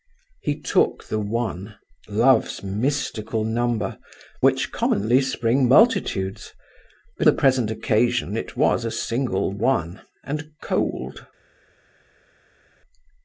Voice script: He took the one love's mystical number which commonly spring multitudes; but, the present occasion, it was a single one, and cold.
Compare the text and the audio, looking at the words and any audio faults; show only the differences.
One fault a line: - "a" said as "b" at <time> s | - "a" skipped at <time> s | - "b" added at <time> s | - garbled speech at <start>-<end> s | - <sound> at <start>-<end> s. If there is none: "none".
none